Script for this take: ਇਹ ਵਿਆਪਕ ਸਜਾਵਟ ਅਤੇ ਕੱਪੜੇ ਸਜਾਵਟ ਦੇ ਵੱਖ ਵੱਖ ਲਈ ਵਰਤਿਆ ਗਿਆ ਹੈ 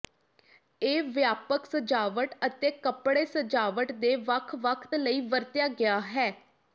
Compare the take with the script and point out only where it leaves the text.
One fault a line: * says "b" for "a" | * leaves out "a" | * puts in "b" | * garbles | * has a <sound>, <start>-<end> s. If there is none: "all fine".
all fine